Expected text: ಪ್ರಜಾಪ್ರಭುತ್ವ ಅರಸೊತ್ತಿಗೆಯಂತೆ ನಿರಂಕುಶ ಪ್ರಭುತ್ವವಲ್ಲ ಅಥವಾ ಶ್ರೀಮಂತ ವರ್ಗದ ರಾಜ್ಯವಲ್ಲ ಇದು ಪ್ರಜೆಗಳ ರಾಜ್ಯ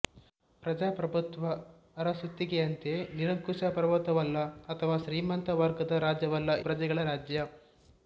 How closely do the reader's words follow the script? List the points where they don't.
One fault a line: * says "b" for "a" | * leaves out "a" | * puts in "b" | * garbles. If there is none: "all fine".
* leaves out "ಇದು"